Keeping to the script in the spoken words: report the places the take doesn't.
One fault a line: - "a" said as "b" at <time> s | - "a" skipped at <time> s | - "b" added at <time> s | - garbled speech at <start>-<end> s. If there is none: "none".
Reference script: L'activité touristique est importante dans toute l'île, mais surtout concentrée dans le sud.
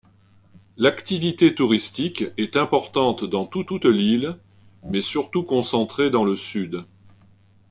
- "toute" added at 3.6 s